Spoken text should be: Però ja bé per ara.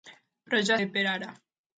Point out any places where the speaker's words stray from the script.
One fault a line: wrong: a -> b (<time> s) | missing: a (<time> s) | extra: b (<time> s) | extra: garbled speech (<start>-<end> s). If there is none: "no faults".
no faults